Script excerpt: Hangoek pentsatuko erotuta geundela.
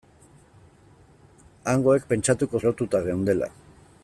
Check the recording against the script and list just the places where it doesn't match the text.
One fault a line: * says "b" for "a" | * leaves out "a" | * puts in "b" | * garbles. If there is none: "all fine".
all fine